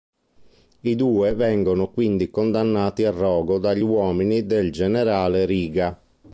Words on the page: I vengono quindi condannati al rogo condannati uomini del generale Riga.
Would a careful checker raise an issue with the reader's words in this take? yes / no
yes